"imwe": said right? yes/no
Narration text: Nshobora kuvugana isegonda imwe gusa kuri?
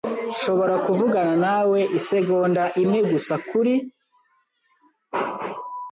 yes